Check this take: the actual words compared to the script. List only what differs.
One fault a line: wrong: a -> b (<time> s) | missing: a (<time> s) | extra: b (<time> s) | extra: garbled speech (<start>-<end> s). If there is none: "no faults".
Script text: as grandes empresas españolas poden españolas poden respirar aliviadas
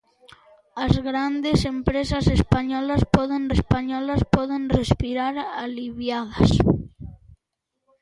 no faults